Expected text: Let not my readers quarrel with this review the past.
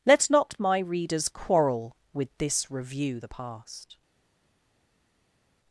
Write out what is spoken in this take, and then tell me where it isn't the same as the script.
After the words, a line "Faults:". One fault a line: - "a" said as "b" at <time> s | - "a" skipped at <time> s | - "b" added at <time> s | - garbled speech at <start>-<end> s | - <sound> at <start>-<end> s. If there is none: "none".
Let not my readers quarrel with this review the past.
Faults:
none